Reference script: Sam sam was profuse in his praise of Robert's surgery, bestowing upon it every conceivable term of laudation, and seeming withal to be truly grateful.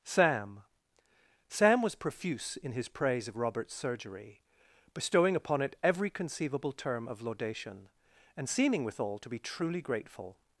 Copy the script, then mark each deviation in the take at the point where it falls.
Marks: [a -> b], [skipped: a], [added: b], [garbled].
Sam sam was profuse in his praise of Robert's surgery, bestowing upon it every conceivable term of laudation, and seeming withal to be truly grateful.